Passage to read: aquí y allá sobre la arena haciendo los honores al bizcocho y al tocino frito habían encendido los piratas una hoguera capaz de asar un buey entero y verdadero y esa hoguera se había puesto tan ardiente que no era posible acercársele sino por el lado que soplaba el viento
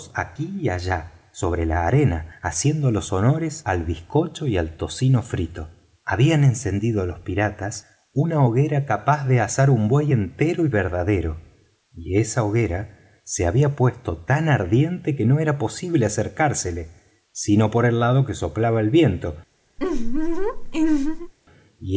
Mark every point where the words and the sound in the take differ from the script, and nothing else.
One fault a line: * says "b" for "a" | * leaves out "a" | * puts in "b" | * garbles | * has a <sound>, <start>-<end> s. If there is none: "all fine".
* has a laugh, 19.8-21.3 s